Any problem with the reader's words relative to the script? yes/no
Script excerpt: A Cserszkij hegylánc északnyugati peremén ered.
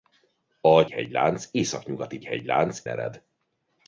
yes